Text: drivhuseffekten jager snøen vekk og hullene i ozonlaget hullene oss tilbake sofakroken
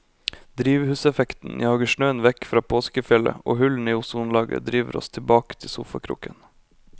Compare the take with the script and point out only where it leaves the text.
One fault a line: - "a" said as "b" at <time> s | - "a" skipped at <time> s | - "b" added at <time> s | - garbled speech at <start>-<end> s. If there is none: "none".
- "fra påskefjellet" added at 2.5 s
- "hullene" said as "driver" at 4.7 s
- "til" added at 5.6 s